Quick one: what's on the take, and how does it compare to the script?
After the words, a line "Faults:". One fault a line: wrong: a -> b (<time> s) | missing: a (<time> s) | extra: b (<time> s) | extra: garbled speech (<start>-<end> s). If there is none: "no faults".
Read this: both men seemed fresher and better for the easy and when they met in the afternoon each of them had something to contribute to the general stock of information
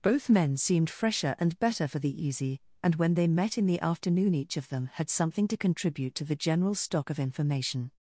both men seemed fresher and better for the easy and when they met in the afternoon each of them had something to contribute to the general stock of information
Faults:
no faults